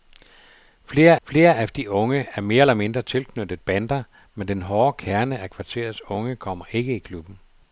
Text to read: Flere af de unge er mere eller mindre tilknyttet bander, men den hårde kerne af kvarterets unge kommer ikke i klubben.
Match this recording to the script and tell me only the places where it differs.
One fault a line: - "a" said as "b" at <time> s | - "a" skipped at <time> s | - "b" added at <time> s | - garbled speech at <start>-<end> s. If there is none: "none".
- "flere" added at 1.2 s